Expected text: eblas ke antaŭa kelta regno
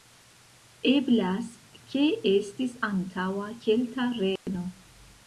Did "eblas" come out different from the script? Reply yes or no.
no